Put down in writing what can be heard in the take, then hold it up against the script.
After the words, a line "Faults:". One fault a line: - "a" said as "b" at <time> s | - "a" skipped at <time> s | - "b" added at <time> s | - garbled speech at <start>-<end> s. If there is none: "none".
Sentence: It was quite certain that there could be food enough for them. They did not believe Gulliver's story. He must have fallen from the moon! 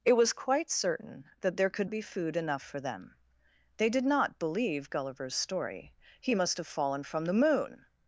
It was quite certain that there could be food enough for them. They did not believe Gulliver's story. He must have fallen from the moon!
Faults:
none